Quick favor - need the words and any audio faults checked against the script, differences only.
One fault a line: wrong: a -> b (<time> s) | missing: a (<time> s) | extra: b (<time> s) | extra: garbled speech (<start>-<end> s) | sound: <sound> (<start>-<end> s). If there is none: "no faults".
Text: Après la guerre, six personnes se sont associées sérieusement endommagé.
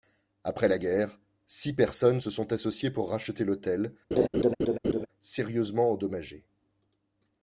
extra: pour racheter l'hôtel (2.9 s)
sound: laugh (4.1-5.1 s)